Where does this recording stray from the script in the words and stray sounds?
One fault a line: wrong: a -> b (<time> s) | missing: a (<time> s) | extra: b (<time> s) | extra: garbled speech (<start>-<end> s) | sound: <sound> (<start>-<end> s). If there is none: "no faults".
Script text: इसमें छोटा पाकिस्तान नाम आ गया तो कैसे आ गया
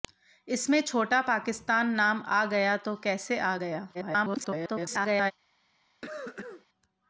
extra: garbled speech (3.9-5.3 s)
sound: cough (6.0-6.7 s)